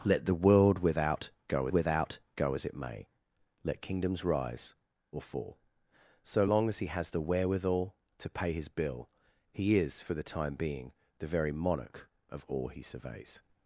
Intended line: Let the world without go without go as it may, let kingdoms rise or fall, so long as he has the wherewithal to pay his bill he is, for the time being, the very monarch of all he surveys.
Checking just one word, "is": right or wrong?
right